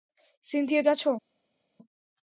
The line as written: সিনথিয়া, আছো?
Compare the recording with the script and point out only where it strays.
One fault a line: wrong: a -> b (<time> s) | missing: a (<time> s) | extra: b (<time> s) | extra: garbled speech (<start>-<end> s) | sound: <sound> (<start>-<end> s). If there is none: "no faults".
no faults